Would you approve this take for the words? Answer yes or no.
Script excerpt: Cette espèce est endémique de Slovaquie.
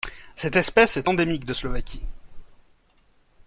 yes